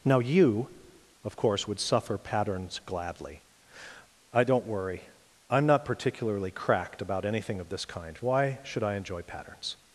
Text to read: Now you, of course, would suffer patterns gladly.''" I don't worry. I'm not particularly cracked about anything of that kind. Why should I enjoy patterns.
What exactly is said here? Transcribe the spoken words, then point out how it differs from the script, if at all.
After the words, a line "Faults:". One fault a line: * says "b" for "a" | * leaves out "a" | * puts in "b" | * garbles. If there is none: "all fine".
Now you, of course, would suffer patterns gladly.''" I don't worry. I'm not particularly cracked about anything of this kind. Why should I enjoy patterns.
Faults:
* says "this" for "that"